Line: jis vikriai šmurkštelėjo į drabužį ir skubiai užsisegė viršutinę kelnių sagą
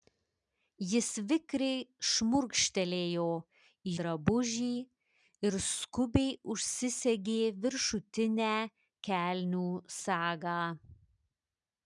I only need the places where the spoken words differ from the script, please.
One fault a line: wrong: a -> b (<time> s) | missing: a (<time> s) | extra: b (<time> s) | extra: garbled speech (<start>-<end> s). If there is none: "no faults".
no faults